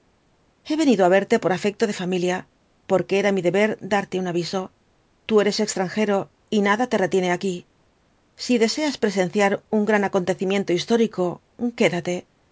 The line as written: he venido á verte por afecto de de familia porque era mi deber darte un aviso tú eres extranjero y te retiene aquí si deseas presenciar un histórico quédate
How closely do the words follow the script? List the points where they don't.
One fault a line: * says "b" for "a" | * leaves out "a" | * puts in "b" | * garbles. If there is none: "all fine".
* leaves out "de"
* puts in "nada"
* puts in "gran acontecimiento"